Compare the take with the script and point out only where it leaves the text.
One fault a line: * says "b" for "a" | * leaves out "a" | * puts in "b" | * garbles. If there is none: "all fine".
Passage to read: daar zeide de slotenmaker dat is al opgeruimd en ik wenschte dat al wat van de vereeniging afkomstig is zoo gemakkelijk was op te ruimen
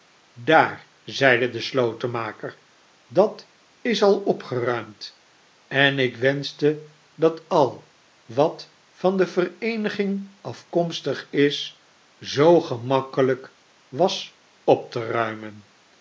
all fine